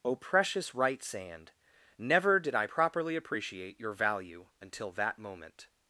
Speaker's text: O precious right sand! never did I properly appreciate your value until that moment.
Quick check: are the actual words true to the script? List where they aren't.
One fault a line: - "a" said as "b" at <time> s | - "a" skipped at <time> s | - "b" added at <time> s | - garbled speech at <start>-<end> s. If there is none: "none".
none